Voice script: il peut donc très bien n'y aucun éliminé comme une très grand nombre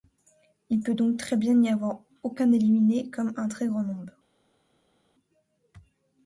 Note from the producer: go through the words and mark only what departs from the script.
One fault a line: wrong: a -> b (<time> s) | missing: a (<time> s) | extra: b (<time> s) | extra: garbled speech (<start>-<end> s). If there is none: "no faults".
extra: avoir (1.7 s)
wrong: une -> un (3.4 s)